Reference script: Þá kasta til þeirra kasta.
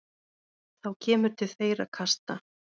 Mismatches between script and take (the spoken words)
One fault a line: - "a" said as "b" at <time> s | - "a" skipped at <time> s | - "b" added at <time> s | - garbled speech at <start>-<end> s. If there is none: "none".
- "kasta" said as "kemur" at 1.1 s